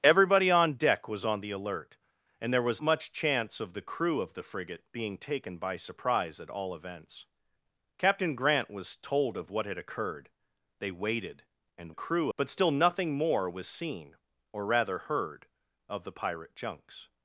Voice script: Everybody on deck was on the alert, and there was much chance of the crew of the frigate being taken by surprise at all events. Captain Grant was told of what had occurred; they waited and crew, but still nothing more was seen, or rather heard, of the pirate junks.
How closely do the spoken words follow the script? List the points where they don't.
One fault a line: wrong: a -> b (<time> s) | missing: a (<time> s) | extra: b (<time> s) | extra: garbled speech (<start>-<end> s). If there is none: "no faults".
no faults